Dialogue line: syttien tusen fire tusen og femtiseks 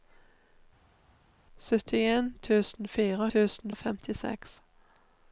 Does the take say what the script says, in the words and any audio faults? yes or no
yes